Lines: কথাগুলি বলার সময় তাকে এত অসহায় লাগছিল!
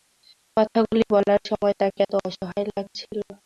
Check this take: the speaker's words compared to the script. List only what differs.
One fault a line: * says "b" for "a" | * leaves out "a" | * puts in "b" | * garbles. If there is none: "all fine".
all fine